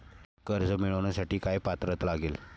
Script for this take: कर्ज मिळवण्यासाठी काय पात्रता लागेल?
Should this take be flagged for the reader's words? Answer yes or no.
no